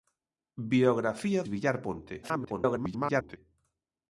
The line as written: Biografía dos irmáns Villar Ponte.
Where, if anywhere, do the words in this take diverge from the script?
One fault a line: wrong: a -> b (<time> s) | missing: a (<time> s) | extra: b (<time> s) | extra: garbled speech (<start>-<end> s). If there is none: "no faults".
missing: dos irmáns (1.4 s)
extra: garbled speech (2.2-3.4 s)